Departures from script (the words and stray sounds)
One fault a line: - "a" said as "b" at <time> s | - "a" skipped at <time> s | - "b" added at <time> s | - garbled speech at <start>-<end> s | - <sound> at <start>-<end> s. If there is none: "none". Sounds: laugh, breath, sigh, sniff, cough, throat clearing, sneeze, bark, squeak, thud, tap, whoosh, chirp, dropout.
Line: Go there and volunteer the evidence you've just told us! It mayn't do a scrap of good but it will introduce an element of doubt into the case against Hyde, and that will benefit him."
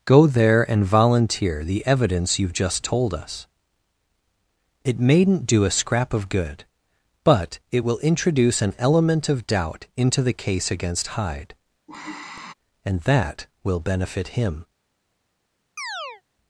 - sigh at 11.9-12.5 s
- chirp at 15.8-16.2 s